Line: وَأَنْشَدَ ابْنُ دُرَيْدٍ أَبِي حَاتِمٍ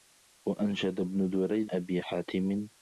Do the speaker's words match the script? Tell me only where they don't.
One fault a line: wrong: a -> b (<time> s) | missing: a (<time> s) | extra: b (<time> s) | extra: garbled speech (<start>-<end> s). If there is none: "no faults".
no faults